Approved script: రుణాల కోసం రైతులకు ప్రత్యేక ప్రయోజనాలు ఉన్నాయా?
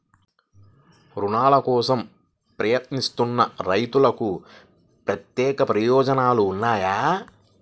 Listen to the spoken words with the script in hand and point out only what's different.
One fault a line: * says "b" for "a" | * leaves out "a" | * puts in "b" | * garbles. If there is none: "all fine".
* puts in "ప్రయత్నిస్తున్న"